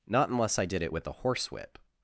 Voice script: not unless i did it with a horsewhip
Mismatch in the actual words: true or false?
false